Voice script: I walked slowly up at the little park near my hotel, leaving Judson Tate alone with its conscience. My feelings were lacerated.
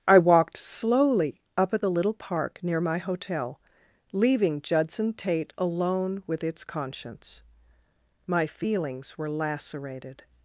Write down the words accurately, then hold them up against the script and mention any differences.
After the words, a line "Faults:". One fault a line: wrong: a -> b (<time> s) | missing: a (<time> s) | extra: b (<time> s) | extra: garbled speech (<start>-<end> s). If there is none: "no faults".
I walked slowly up at the little park near my hotel, leaving Judson Tate alone with its conscience. My feelings were lacerated.
Faults:
no faults